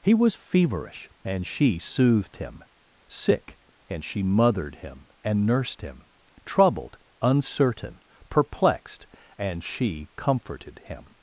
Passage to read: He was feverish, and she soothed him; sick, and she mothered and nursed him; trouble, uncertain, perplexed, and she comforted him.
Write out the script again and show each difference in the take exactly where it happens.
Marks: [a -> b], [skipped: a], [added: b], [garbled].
He was feverish, and she soothed him; sick, and she mothered [added: him] and nursed him; [trouble, -> troubled] uncertain, perplexed, and she comforted him.